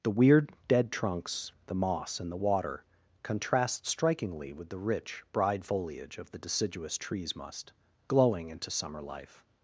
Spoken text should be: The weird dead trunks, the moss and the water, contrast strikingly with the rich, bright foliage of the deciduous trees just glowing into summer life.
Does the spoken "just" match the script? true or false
false